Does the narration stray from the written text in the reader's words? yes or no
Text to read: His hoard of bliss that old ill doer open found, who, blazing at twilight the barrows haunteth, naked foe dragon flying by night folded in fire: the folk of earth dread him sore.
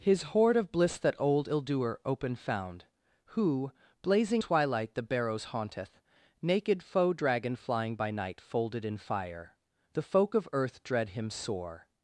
yes